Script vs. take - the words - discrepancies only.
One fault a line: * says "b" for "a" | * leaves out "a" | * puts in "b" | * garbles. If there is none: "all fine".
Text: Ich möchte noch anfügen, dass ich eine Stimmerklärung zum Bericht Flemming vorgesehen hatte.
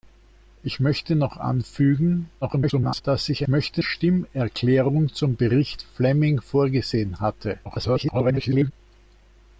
* garbles
* says "möchte" for "eine"
* garbles